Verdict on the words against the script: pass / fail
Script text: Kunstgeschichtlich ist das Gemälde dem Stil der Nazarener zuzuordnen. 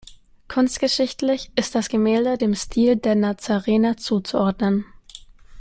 pass